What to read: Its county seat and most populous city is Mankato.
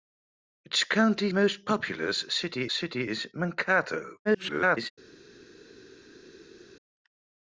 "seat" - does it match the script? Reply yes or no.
no